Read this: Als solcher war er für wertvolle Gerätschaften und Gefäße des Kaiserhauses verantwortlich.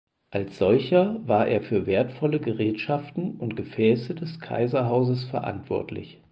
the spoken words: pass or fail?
pass